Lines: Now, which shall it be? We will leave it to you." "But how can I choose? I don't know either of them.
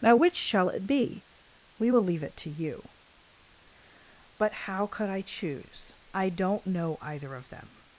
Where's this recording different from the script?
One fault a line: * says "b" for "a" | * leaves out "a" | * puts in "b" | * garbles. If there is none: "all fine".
* says "could" for "can"